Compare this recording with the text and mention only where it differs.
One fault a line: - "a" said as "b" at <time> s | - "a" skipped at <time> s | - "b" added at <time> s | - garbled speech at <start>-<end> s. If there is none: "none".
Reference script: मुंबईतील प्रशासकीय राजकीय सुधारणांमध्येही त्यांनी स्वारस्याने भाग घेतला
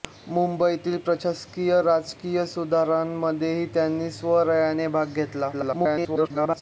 - garbled speech at 5.5-6.6 s